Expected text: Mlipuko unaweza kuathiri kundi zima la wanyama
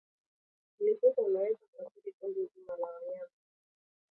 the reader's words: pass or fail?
pass